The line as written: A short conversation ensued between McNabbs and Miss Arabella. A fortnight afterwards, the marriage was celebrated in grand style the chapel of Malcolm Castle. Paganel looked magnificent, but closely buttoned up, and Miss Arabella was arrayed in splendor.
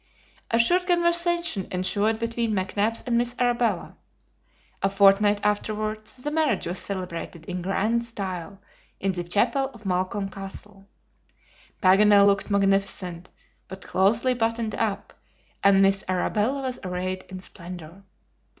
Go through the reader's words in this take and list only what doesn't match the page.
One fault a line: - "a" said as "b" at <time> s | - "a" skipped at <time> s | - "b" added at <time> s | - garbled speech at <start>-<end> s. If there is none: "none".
- "in" added at 9.0 s